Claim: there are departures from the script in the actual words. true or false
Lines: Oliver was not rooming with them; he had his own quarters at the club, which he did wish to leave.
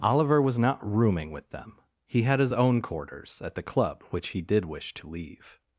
false